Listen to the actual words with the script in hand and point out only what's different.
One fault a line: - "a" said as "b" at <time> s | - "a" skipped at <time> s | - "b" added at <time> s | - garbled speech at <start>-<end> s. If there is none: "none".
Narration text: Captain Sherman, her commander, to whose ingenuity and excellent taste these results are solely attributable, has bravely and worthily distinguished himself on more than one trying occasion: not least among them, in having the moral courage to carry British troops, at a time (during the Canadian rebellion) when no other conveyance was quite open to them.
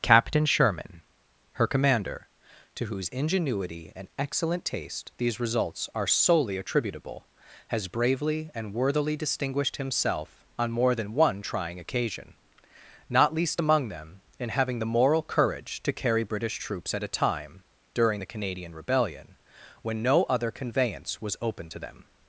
- "quite" skipped at 21.4 s